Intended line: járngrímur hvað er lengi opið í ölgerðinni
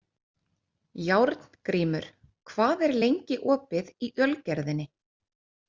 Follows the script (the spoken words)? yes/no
yes